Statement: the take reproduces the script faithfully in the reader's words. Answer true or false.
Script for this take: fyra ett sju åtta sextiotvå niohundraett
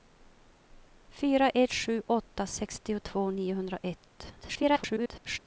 false